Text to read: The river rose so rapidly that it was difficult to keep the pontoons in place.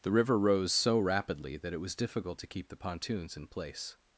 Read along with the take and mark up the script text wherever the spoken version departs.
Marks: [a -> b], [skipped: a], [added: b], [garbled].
The river rose so rapidly that it was difficult to keep the pontoons in place.